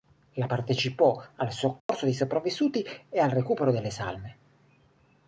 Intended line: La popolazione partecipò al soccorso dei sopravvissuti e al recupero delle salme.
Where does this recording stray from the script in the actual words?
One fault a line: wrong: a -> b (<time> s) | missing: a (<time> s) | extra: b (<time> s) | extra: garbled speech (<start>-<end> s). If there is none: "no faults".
missing: popolazione (0.5 s)